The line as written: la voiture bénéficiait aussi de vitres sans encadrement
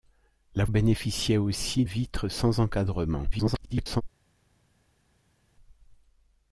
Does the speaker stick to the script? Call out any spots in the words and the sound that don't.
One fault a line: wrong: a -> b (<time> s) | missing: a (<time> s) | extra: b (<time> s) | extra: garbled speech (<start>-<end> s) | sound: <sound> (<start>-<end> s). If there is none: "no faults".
missing: voiture (0.7 s)
missing: de (1.8 s)
extra: garbled speech (3.3-4.0 s)